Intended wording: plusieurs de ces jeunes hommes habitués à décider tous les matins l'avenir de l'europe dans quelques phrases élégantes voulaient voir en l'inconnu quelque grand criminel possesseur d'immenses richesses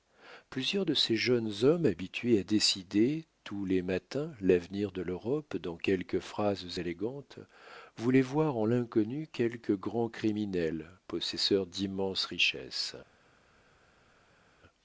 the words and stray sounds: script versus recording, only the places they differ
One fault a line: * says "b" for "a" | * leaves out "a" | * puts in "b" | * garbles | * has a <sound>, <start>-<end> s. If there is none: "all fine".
all fine